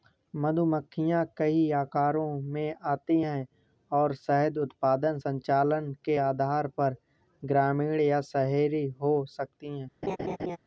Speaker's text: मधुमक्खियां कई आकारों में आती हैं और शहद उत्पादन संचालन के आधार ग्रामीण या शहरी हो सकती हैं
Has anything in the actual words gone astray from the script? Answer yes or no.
yes